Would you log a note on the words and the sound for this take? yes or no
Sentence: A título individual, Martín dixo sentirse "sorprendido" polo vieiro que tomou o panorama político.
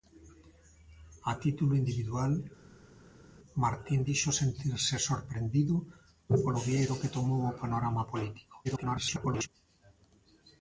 yes